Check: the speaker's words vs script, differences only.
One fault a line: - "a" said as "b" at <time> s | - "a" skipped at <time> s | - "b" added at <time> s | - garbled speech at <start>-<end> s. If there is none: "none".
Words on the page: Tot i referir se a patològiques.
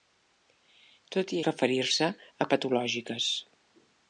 none